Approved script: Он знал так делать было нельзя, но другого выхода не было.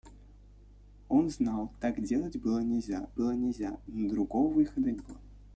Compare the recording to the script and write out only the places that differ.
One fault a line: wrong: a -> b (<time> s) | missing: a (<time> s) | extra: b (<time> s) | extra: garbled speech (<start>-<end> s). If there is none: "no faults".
extra: было нельзя (3.1 s)
missing: не (4.9 s)